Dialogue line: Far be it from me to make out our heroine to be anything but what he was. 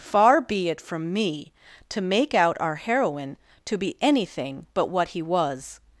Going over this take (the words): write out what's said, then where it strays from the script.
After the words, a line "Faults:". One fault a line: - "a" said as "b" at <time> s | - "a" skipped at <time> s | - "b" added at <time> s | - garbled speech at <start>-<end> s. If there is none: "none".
Far be it from me to make out our heroine to be anything but what he was.
Faults:
none